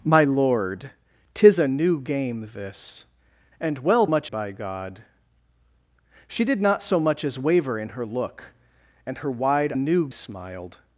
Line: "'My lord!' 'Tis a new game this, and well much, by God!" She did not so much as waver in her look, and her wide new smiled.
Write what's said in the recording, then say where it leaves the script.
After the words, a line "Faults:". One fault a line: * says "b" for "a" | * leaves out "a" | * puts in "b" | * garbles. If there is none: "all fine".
"'My lord!' 'Tis a new game this, and well much, by God!" She did not so much as waver in her look, and her wide new smiled.
Faults:
all fine